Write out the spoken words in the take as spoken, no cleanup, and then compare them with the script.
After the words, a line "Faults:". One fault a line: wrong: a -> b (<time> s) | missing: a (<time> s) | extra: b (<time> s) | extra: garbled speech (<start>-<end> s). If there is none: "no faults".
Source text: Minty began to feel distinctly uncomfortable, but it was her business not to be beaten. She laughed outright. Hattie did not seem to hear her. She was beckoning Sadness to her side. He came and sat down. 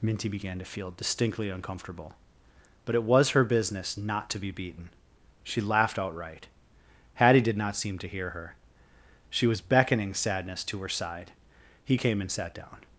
Minty began to feel distinctly uncomfortable, but it was her business not to be beaten. She laughed outright. Hattie did not seem to hear her. She was beckoning Sadness to her side. He came and sat down.
Faults:
no faults